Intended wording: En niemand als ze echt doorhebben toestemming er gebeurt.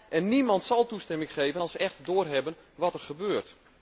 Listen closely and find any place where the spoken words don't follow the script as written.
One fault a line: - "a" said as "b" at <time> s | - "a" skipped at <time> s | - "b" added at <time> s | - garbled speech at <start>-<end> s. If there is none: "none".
- "zal toestemming geven" added at 0.6 s
- "toestemming" said as "wat" at 2.7 s